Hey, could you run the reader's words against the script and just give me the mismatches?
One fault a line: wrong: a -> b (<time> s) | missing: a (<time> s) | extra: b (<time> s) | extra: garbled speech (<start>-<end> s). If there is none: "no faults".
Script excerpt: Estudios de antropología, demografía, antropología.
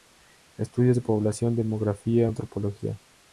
wrong: antropología -> población (1.0 s)